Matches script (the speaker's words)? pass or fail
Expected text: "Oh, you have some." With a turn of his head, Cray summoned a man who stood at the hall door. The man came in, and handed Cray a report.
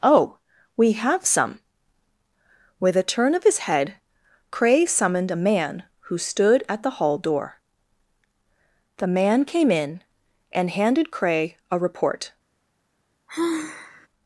fail